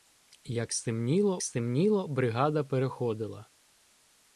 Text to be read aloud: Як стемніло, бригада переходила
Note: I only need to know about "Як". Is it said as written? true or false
true